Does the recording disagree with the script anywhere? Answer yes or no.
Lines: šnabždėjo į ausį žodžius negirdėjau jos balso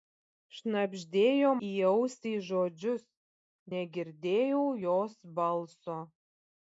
no